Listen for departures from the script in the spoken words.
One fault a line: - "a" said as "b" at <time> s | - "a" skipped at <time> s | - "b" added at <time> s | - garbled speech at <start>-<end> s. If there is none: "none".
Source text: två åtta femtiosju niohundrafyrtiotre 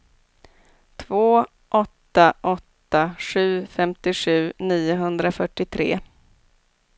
- "åtta sju" added at 2.4 s